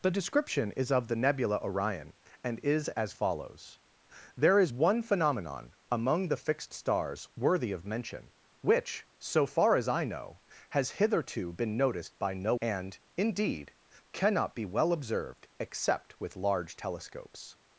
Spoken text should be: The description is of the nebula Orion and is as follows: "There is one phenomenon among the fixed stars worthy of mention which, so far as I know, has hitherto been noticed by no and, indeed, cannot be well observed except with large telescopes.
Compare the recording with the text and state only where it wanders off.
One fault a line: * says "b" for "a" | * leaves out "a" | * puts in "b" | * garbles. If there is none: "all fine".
all fine